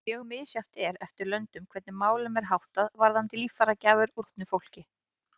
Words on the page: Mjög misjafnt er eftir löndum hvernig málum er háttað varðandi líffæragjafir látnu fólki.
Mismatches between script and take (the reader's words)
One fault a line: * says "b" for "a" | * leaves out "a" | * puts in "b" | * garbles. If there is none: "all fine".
all fine